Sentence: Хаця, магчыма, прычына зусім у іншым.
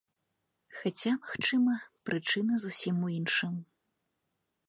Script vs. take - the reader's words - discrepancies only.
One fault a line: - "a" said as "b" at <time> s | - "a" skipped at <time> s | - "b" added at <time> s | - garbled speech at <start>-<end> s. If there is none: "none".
none